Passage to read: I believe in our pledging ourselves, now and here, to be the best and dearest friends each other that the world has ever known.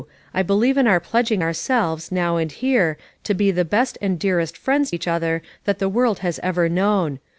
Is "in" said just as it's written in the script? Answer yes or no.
yes